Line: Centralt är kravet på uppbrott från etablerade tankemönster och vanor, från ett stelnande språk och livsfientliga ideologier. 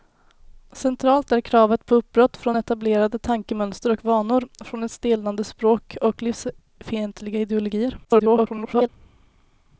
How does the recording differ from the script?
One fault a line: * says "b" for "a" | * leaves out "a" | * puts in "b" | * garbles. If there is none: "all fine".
* garbles